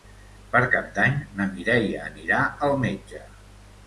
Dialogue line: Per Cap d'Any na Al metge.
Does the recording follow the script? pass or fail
fail